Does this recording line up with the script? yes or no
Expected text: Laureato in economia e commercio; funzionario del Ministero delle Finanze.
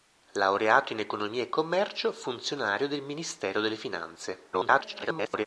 no